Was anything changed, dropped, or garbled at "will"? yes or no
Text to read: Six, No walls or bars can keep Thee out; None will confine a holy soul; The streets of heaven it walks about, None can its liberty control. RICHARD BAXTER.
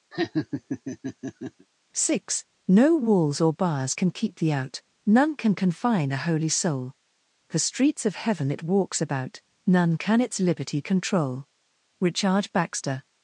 yes